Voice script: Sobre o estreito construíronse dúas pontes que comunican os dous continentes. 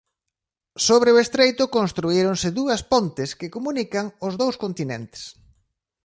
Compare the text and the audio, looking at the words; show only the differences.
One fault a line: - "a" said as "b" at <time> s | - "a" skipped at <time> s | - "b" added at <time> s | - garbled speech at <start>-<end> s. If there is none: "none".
none